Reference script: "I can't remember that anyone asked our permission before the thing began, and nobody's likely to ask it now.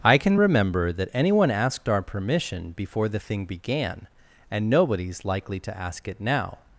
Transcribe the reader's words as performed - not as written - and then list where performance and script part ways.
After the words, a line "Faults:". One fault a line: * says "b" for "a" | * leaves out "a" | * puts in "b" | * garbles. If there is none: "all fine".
"I can remember that anyone asked our permission before the thing began, and nobody's likely to ask it now.
Faults:
* says "can" for "can't"